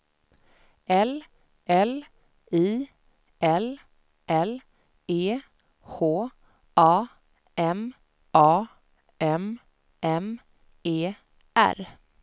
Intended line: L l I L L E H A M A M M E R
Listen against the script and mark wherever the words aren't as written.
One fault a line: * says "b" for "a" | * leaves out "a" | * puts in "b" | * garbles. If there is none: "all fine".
all fine